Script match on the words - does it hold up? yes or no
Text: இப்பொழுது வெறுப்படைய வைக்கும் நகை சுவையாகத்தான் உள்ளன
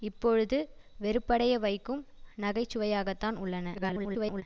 no